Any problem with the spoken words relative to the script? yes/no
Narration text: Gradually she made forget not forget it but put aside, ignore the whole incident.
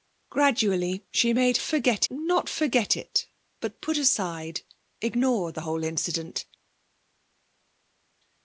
no